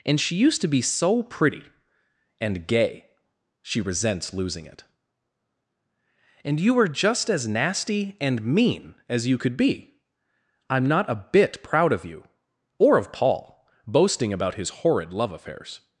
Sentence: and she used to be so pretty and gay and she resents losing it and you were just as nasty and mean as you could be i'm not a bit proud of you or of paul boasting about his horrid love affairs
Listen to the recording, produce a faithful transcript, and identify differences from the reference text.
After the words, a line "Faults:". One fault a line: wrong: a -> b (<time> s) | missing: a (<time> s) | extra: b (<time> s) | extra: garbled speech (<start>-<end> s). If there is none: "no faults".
and she used to be so pretty and gay she resents losing it and you were just as nasty and mean as you could be i'm not a bit proud of you or of paul boasting about his horrid love affairs
Faults:
missing: and (3.0 s)